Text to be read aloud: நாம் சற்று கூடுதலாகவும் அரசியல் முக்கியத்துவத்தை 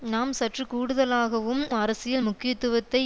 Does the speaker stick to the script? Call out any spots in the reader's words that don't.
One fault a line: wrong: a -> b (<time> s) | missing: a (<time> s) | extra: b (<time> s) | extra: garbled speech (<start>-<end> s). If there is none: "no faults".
no faults